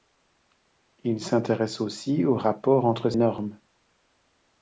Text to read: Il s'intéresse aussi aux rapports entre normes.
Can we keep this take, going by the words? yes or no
yes